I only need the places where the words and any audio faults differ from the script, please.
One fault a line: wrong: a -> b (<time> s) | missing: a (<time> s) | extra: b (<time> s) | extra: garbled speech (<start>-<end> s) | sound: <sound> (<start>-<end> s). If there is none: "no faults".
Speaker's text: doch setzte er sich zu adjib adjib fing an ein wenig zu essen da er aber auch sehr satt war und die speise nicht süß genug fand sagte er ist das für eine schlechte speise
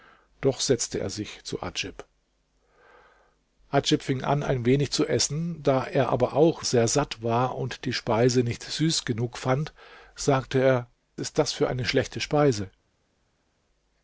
no faults